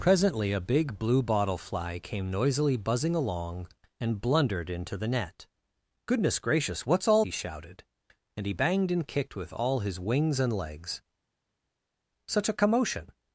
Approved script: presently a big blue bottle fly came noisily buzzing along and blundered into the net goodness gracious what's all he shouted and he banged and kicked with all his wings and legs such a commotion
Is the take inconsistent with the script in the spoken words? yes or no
no